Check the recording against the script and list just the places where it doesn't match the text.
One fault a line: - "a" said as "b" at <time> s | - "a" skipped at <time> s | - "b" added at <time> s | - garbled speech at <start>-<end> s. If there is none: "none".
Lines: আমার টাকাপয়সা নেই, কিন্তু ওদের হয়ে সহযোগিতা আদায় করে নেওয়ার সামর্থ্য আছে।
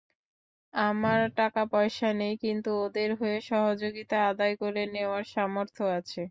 none